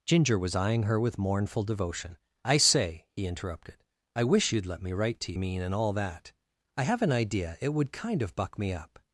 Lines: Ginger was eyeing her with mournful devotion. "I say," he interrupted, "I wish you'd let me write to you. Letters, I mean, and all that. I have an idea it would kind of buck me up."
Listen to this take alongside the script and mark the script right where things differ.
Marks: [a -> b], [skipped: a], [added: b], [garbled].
Ginger was eyeing her with mournful devotion. "I say," he interrupted, "I wish you'd let me write to [skipped: you. Letters, I] mean, and all that. I have an idea it would kind of buck me up."